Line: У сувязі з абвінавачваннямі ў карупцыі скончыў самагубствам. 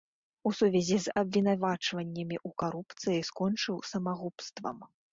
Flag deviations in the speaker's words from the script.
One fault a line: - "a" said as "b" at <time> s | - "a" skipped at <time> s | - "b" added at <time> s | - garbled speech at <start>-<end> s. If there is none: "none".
none